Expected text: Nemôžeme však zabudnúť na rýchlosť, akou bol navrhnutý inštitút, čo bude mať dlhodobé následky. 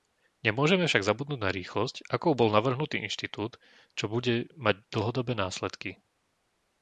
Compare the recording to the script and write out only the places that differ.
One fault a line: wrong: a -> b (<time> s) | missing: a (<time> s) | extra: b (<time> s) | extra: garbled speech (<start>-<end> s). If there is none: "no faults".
no faults